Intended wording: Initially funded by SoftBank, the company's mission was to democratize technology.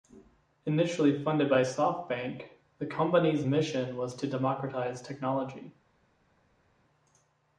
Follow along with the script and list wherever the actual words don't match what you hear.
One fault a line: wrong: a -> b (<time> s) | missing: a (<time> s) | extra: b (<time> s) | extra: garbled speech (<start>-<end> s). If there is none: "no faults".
no faults